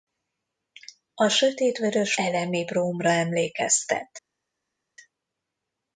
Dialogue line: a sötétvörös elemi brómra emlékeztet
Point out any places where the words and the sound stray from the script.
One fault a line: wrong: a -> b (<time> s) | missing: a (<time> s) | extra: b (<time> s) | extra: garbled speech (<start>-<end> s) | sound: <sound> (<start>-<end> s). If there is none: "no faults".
no faults